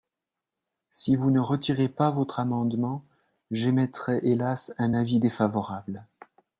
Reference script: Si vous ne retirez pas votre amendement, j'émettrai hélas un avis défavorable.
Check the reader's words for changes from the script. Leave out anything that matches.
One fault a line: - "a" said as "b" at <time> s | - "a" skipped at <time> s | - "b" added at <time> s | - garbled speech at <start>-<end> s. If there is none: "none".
none